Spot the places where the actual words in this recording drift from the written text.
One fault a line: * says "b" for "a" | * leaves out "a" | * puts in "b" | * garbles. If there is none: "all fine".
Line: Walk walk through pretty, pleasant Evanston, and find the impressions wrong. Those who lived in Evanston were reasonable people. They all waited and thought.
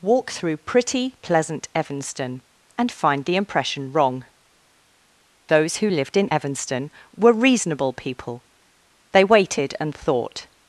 * leaves out "walk"
* says "impression" for "impressions"
* leaves out "all"